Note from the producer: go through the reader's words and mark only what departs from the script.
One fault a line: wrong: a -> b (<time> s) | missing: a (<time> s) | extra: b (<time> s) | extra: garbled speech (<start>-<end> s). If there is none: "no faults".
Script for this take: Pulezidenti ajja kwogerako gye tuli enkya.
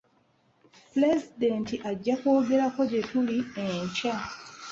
no faults